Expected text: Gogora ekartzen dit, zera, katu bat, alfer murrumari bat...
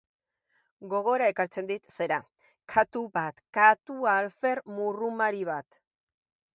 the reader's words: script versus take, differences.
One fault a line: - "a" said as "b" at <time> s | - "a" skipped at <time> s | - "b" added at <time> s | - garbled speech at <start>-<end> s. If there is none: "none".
- "katu" added at 3.6 s